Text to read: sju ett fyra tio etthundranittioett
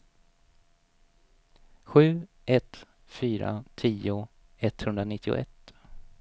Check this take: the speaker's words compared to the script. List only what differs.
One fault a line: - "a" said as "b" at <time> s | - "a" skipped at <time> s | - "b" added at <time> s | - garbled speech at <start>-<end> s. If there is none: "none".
none